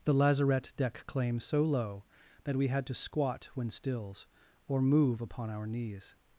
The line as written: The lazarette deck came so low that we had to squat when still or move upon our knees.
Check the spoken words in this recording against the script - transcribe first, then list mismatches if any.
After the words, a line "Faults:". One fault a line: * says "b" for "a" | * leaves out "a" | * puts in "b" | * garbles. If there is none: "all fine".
The lazarette deck claim so low that we had to squat when stills or move upon our knees.
Faults:
* says "claim" for "came"
* says "stills" for "still"